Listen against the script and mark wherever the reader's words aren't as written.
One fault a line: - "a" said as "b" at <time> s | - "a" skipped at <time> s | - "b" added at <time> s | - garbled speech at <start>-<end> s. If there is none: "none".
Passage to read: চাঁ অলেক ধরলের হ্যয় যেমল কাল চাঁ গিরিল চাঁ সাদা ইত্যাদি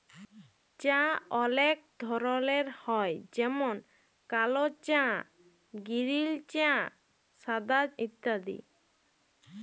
none